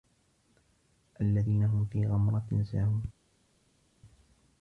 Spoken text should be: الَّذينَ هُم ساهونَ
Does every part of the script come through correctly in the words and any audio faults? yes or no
no